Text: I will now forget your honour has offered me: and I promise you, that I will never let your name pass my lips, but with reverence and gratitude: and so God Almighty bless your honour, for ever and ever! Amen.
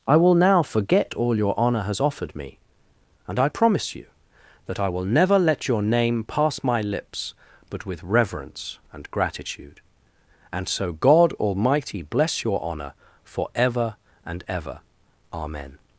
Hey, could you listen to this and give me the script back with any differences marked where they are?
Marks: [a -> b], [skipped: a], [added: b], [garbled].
I will now forget [added: all] your honour has offered me: and I promise you, that I will never let your name pass my lips, but with reverence and gratitude: and so God Almighty bless your honour, for ever and ever! Amen.